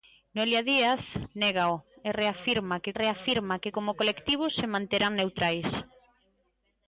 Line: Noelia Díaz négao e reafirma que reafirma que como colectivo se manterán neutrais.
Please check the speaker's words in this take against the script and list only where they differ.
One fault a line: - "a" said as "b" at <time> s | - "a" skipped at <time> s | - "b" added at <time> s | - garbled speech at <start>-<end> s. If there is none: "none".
none